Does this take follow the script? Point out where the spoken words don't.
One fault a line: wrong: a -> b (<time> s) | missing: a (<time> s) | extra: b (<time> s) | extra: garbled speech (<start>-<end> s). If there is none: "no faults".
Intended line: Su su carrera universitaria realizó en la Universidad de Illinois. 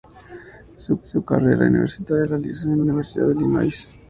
no faults